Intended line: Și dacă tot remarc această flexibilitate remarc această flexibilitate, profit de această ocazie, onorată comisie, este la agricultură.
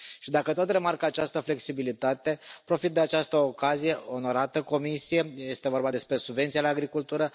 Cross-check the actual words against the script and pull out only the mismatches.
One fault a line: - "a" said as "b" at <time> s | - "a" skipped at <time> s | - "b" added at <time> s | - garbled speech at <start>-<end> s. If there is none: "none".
- "remarc această flexibilitate" skipped at 2.4 s
- "vorba despre subvenția" added at 5.7 s